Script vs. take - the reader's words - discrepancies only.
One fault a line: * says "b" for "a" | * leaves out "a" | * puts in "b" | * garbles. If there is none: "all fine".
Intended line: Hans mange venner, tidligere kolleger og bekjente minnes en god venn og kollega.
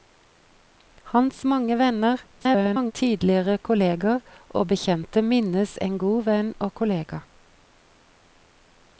* garbles